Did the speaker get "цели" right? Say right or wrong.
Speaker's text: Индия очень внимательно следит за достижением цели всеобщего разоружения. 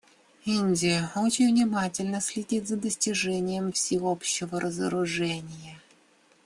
wrong